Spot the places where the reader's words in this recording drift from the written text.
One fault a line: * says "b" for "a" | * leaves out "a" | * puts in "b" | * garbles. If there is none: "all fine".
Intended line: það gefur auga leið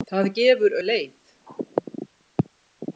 * leaves out "auga"